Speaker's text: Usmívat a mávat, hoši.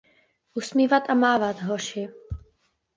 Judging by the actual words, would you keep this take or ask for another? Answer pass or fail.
pass